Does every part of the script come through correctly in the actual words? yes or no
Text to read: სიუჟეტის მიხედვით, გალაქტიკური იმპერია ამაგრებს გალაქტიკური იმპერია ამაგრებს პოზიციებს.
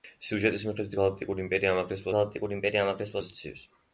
yes